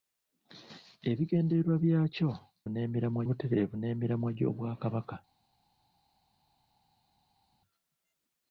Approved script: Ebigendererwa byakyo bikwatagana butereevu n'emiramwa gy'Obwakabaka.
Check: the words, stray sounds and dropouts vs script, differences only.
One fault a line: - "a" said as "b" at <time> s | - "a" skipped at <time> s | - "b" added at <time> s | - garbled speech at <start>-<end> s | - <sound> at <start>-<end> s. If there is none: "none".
- "bikwatagana" said as "n'emiramwa" at 2.7 s